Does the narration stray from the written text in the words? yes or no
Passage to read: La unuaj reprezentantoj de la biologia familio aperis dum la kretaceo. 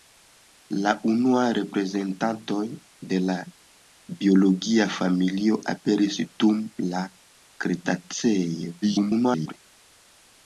yes